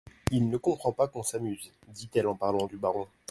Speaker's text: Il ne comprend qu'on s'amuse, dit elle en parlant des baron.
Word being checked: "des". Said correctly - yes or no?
no